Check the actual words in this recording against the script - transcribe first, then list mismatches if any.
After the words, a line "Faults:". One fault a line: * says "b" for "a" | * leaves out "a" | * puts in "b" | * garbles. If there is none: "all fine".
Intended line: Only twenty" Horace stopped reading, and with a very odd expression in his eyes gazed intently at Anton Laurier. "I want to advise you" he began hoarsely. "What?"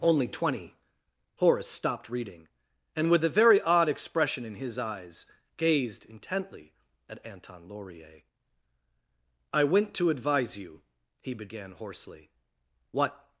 Only twenty" Horace stopped reading, and with a very odd expression in his eyes gazed intently at Anton Laurier. "I went to advise you" he began hoarsely. "What?"
Faults:
* says "went" for "want"